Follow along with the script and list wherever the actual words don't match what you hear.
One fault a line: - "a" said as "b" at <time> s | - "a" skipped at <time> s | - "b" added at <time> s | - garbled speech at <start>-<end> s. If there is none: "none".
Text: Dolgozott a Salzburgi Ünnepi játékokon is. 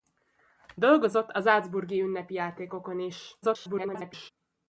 - garbled speech at 3.4-4.3 s